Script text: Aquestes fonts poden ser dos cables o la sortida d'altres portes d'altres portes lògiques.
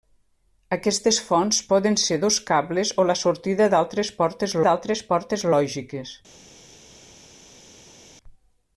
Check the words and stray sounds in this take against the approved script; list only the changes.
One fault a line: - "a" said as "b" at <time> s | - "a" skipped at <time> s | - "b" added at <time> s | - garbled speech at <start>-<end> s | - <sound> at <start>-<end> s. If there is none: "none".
none